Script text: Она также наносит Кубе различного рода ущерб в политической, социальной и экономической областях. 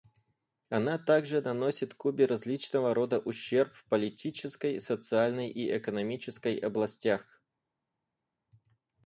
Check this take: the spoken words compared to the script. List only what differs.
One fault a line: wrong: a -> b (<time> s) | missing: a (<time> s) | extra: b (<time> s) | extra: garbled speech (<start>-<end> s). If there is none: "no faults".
no faults